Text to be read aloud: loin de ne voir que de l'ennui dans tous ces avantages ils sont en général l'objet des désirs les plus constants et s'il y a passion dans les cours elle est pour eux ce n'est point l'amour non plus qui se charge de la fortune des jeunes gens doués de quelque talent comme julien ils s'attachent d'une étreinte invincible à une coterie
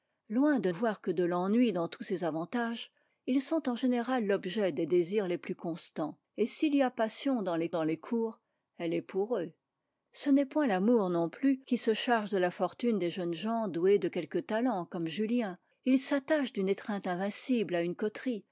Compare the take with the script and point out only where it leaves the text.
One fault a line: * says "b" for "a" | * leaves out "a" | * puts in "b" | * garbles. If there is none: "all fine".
* leaves out "ne"
* puts in "dans les"